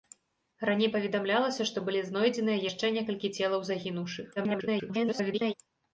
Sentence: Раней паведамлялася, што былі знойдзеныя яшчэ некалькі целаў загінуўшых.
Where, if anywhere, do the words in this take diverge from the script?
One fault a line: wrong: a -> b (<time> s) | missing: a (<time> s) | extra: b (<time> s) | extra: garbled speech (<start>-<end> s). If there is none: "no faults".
extra: garbled speech (4.4-5.5 s)